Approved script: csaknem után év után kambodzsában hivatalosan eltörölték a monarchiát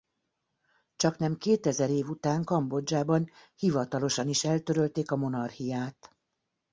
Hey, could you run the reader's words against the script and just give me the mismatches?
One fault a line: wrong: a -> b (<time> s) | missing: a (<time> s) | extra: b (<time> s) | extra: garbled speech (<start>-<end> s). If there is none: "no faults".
wrong: után -> kétezer (1.4 s)
extra: is (4.3 s)